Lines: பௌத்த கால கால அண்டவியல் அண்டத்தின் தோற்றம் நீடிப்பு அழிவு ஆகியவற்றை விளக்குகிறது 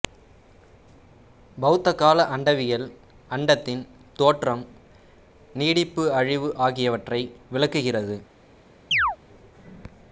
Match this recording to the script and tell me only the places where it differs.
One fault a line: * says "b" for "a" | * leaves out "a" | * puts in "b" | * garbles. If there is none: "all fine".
* leaves out "கால"